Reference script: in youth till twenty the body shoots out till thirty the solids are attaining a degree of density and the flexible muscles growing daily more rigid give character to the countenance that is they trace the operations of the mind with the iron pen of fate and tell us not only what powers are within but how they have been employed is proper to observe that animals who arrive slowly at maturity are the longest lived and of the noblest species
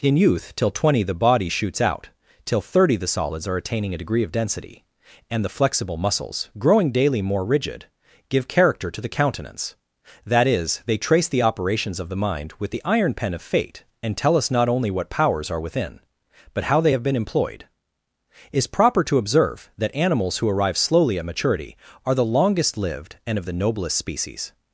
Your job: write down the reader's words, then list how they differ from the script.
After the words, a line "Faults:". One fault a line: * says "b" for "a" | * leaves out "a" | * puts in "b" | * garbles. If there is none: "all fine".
in youth till twenty the body shoots out till thirty the solids are attaining a degree of density and the flexible muscles growing daily more rigid give character to the countenance that is they trace the operations of the mind with the iron pen of fate and tell us not only what powers are within but how they have been employed is proper to observe that animals who arrive slowly at maturity are the longest lived and of the noblest species
Faults:
all fine